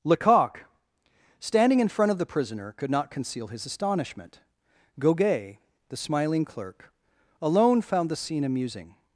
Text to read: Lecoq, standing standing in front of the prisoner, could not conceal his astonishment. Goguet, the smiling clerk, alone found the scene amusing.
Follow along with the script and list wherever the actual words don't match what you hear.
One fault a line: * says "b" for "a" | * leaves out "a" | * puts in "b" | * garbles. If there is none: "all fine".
* leaves out "standing"